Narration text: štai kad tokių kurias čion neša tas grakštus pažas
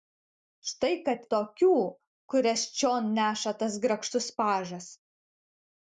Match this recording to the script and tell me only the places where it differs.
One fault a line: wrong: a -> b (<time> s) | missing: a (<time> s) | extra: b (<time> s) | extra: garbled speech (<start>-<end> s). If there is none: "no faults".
no faults